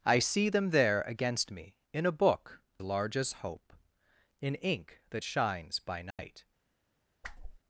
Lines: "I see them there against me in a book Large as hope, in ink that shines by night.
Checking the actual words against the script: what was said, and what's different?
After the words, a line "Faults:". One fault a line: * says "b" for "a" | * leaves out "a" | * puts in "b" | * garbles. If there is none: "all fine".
"I see them there against me in a book Large as hope, in ink that shines by night.
Faults:
all fine